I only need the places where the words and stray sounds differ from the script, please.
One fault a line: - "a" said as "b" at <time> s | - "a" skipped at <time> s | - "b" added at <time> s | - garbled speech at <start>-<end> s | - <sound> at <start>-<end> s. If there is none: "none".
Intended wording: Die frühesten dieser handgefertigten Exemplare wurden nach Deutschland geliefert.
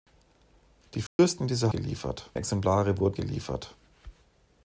- dropout at 1.1-1.2 s
- "handgefertigten" said as "geliefert" at 1.7 s
- "nach Deutschland" skipped at 3.2 s